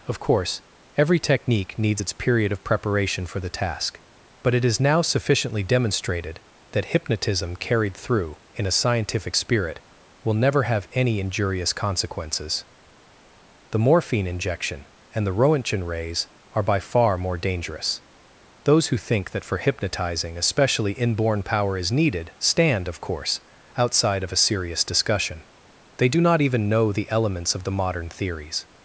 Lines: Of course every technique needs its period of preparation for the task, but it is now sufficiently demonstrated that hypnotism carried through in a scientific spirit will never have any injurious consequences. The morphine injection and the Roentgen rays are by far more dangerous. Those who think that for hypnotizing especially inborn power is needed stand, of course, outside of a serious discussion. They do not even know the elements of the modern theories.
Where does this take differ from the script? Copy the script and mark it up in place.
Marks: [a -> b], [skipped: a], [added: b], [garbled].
Of course every technique needs its period of preparation for the task, but it is now sufficiently demonstrated that hypnotism carried through in a scientific spirit will never have any injurious consequences. The morphine injection and the Roentgen rays are by far more dangerous. Those who think that for hypnotizing especially inborn power is needed stand, of course, outside of a serious discussion. They do not even know the elements of the modern theories.